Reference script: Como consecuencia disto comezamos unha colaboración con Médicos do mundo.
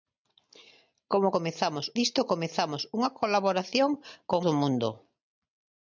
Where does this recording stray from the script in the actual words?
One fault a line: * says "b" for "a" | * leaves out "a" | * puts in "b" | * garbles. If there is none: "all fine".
* says "comezamos" for "consecuencia"
* leaves out "Médicos"